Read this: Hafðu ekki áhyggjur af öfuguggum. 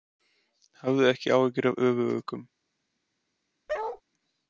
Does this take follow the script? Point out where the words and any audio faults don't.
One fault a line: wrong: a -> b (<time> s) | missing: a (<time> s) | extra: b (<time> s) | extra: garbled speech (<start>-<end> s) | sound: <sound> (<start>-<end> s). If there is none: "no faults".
sound: bark (3.7-4.0 s)